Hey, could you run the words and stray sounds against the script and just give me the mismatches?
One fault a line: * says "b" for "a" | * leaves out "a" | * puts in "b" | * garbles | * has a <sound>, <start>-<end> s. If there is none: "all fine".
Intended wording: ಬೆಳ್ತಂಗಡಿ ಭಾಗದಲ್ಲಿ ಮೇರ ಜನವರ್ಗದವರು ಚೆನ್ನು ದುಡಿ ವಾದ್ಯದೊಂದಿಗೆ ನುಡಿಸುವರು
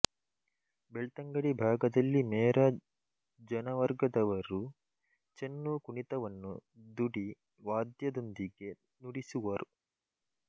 * puts in "ಕುಣಿತವನ್ನು"